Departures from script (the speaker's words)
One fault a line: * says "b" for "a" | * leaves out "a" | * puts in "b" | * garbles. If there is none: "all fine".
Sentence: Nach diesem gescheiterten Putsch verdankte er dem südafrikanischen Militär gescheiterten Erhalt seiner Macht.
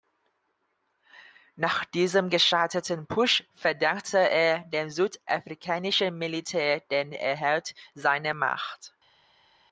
* says "den" for "gescheiterten"